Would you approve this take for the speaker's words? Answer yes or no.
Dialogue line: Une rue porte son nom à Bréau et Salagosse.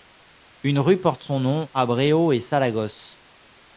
yes